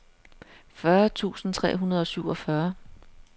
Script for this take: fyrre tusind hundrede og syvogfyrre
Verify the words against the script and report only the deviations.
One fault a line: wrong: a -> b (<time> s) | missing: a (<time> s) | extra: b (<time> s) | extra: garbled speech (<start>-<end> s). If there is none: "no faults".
extra: tre (1.5 s)